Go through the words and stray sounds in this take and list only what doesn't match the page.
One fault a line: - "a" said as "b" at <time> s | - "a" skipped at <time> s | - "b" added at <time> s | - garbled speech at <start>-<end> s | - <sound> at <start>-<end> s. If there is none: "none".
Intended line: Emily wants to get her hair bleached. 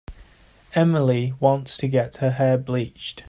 none